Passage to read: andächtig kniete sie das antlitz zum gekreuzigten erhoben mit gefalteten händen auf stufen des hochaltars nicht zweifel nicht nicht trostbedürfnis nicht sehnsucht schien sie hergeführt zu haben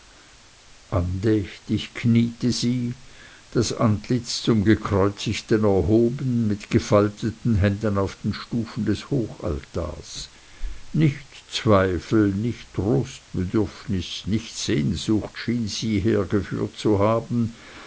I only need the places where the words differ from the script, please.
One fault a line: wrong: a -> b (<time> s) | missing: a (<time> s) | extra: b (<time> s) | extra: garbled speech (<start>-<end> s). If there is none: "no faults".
extra: den (8.2 s)
missing: nicht (12.7 s)